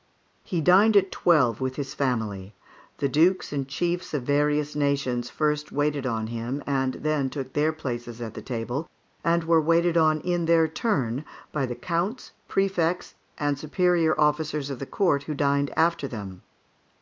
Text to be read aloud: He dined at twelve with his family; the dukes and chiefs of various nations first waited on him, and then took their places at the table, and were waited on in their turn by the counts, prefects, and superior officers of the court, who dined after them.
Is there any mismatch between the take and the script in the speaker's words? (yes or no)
no